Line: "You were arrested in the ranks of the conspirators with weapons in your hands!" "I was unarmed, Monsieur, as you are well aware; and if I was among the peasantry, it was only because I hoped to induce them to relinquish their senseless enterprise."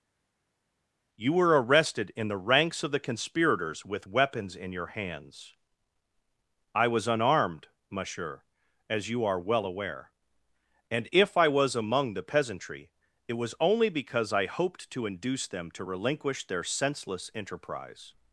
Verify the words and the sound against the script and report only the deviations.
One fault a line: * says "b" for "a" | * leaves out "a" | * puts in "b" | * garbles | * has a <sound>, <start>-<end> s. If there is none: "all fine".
all fine